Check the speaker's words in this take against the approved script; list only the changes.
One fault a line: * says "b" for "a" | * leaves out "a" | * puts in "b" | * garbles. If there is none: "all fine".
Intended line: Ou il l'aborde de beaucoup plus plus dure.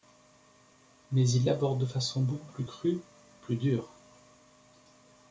* says "Mais" for "Ou"
* puts in "façon"
* puts in "crue"